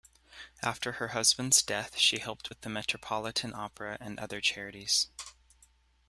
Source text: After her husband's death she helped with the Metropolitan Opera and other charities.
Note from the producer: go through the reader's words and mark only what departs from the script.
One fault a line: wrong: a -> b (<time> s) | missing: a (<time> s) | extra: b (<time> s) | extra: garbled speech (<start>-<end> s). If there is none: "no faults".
no faults